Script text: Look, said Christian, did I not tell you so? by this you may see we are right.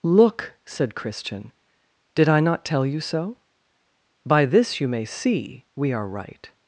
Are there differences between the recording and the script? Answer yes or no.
no